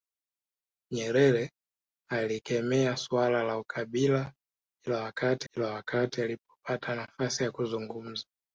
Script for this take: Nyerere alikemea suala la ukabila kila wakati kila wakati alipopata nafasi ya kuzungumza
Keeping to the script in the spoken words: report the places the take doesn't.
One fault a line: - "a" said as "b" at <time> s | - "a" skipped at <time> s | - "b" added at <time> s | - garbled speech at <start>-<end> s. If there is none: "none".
none